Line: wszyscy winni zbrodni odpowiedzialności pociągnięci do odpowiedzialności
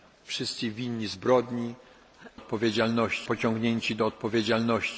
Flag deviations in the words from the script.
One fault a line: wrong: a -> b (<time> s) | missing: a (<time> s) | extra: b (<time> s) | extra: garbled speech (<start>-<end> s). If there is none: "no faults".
no faults